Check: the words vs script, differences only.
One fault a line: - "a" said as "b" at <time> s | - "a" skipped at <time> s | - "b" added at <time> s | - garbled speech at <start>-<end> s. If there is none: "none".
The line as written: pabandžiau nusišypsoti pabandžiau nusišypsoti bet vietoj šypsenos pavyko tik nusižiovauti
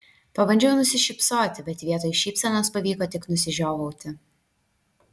- "pabandžiau nusišypsoti" skipped at 1.7 s